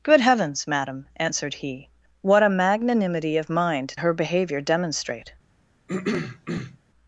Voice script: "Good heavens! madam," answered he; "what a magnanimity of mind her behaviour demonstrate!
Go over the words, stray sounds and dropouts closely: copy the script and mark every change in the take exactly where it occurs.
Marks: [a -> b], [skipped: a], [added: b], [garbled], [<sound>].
"Good heavens! madam," answered he; "what a magnanimity of mind her behaviour demonstrate! [throat clearing]